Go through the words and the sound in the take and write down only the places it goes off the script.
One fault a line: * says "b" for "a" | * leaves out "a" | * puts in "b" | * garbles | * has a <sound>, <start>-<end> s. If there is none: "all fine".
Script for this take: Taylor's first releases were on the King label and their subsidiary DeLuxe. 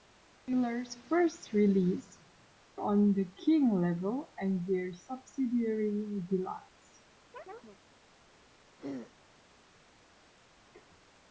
* leaves out "were"
* has a chirp, 7.3-7.8 s
* has a throat clearing, 8.8-9.1 s